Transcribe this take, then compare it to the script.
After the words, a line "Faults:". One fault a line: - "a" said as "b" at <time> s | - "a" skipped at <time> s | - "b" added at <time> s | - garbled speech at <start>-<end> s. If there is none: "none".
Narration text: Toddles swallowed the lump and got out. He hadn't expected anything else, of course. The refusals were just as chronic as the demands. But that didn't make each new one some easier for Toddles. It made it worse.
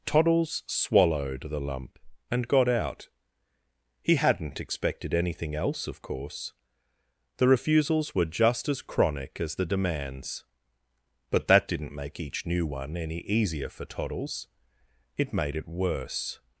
Toddles swallowed the lump and got out. He hadn't expected anything else, of course. The refusals were just as chronic as the demands. But that didn't make each new one any easier for Toddles. It made it worse.
Faults:
- "some" said as "any" at 13.0 s